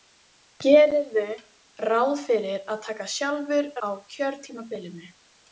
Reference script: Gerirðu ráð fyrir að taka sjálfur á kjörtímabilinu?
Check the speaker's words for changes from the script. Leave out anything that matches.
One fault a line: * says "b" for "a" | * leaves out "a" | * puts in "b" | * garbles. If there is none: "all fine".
all fine